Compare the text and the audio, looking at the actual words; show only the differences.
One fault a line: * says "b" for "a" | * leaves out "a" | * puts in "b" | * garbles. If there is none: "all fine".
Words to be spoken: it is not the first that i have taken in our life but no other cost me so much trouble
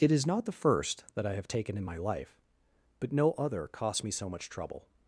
* says "my" for "our"